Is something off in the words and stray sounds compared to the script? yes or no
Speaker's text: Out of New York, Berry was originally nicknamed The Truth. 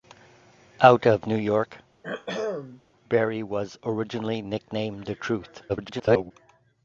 yes